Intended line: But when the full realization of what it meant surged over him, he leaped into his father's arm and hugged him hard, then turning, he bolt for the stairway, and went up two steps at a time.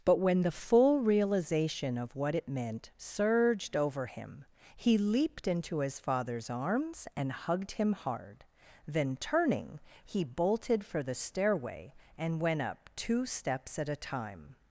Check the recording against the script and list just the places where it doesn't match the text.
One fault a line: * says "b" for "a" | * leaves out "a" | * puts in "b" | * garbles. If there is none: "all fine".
* says "arms" for "arm"
* says "bolted" for "bolt"